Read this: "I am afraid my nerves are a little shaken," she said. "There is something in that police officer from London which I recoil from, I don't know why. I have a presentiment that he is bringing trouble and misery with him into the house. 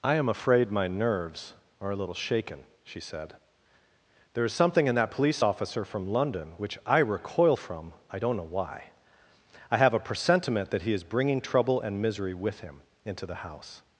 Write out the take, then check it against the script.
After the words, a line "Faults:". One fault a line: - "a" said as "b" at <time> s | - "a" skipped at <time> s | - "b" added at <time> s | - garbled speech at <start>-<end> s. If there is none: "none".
"I am afraid my nerves are a little shaken," she said. "There is something in that police officer from London which I recoil from, I don't know why. I have a presentiment that he is bringing trouble and misery with him into the house.
Faults:
none